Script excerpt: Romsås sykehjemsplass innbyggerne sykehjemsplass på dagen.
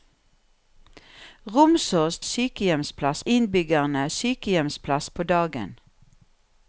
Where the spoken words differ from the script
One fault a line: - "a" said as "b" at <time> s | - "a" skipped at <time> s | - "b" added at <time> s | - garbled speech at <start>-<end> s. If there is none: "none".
none